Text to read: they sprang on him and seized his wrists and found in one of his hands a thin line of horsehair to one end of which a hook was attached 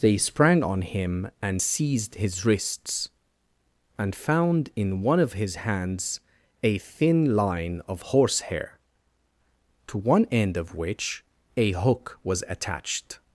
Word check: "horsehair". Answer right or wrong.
right